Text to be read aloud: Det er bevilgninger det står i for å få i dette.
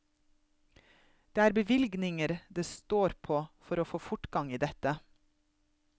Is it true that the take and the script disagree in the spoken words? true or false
true